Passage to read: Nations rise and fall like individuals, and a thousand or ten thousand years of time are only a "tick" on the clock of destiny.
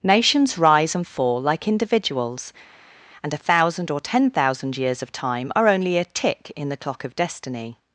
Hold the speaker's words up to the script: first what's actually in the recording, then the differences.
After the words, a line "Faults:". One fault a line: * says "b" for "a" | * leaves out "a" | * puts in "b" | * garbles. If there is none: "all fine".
Nations rise and fall like individuals, and a thousand or ten thousand years of time are only a "tick" in the clock of destiny.
Faults:
* says "in" for "on"